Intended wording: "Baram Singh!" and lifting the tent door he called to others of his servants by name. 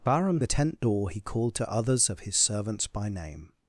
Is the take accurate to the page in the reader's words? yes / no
no